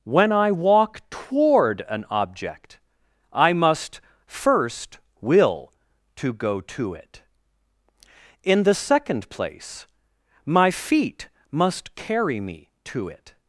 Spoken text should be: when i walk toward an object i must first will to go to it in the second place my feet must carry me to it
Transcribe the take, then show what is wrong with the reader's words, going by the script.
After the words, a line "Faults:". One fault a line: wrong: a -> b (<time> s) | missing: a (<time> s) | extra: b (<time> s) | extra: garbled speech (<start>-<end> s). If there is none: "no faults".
when i walk toward an object i must first will to go to it in the second place my feet must carry me to it
Faults:
no faults